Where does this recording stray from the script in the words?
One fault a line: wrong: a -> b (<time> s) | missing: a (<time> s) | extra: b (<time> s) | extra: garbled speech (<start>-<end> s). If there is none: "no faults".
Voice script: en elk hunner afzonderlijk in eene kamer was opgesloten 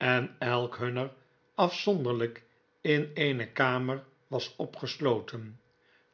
no faults